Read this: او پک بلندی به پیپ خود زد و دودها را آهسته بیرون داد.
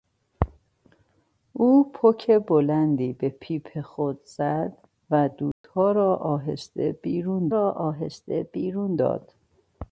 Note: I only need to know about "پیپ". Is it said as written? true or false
true